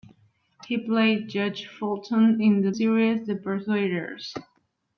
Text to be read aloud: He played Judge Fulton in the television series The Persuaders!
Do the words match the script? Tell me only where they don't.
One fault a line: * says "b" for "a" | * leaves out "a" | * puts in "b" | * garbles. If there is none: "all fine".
* leaves out "television"